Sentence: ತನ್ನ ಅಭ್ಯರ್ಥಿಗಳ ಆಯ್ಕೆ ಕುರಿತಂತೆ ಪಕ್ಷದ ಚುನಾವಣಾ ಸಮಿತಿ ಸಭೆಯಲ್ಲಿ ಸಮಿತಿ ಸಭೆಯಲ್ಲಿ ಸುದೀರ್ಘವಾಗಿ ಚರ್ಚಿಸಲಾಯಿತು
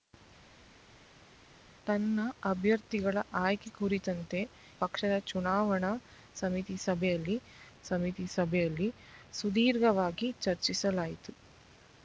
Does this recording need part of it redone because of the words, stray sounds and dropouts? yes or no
no